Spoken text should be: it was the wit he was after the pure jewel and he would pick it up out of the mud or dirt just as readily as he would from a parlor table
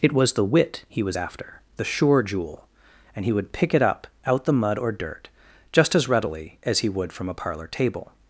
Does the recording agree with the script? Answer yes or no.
no